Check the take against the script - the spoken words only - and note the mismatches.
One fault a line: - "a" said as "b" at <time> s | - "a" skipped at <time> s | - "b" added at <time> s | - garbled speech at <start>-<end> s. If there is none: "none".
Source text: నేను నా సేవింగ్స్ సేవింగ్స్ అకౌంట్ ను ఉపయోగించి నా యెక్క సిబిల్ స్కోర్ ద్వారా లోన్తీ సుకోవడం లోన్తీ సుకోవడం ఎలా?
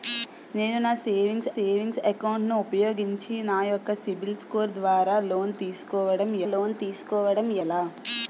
none